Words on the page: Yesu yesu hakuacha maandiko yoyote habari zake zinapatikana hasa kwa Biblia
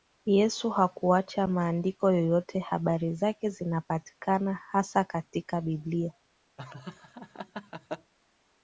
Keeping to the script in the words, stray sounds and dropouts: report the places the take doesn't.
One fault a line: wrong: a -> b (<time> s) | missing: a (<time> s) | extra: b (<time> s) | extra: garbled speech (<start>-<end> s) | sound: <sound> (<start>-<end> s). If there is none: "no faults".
missing: yesu (0.7 s)
wrong: kwa -> katika (5.0 s)
sound: laugh (6.6-8.1 s)